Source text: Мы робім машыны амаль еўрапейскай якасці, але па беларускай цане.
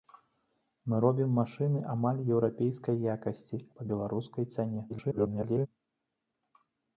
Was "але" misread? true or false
true